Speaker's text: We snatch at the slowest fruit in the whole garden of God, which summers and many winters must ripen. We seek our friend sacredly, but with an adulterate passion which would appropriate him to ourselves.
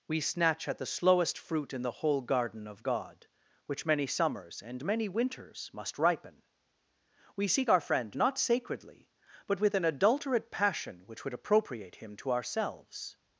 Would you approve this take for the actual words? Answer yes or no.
no